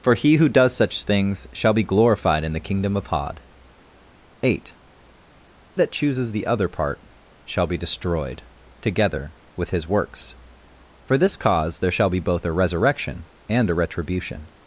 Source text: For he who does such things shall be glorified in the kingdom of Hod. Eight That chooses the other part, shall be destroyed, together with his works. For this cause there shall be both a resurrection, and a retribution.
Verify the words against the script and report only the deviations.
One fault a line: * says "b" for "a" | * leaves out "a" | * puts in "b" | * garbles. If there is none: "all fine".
all fine